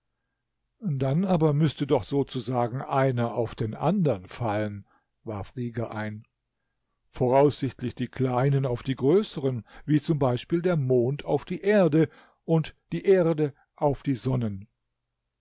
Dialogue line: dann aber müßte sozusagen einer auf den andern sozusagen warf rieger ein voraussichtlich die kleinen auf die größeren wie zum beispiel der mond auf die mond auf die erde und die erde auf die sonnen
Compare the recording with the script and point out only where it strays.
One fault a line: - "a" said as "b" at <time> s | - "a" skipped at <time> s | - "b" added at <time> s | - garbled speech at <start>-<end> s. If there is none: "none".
- "doch" added at 1.9 s
- "sozusagen" said as "fallen" at 4.3 s
- "mond auf die" skipped at 11.6 s